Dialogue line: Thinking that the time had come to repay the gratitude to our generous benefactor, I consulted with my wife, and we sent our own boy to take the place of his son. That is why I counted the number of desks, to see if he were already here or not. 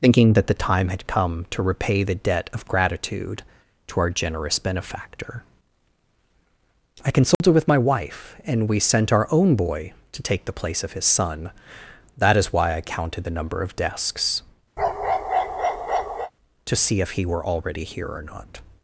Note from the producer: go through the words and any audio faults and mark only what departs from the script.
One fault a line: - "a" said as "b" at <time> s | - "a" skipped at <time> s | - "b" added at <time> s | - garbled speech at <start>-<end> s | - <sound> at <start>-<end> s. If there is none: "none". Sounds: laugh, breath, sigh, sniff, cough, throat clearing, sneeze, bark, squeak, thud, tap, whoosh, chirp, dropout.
- "debt of" added at 2.1 s
- dropout at 7.3-7.4 s
- bark at 14.8-16.3 s